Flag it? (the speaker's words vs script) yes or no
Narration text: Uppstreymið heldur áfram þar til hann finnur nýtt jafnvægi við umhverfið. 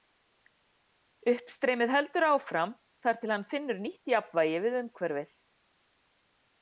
no